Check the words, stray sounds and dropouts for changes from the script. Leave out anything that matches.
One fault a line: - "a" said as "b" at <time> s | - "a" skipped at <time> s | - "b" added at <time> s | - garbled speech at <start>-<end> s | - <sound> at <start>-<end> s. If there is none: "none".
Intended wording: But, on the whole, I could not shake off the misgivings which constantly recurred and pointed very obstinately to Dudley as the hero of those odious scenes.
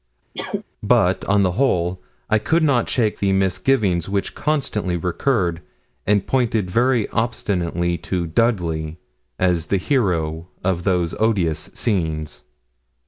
- sneeze at 0.3-0.6 s
- "off" skipped at 3.2 s